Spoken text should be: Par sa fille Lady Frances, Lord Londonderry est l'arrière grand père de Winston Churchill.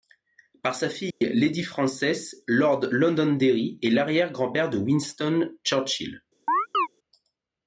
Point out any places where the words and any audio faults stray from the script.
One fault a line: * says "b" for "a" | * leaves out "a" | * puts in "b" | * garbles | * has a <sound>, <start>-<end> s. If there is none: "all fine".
* has a dropout, 1.1-1.2 s
* has a chirp, 6.5-6.9 s